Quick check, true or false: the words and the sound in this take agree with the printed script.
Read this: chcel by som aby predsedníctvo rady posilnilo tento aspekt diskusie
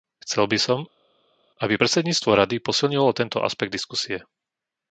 true